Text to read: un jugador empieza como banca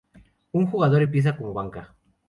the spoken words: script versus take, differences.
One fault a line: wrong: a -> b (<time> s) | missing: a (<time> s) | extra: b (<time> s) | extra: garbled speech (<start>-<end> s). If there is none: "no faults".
no faults